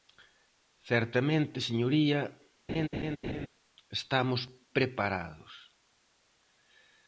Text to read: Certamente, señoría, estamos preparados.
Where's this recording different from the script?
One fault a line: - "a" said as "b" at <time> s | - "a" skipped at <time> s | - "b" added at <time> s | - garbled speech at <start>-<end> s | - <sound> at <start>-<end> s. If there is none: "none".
- laugh at 2.7-3.5 s